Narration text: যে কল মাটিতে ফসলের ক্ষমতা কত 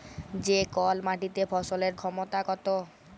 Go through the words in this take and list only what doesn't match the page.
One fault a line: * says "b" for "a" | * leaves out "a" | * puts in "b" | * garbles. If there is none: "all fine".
all fine